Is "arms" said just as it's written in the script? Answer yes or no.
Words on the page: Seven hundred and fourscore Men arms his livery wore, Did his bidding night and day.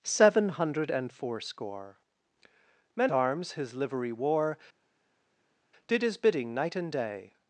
yes